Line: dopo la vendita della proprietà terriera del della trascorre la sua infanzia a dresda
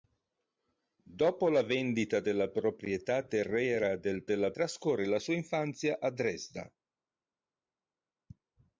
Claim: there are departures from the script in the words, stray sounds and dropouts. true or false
false